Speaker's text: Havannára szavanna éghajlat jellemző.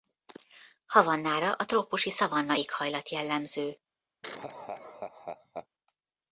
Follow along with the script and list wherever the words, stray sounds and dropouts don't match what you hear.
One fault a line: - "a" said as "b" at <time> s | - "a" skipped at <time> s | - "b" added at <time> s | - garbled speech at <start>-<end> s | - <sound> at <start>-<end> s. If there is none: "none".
- "a trópusi" added at 1.5 s
- laugh at 4.2-5.7 s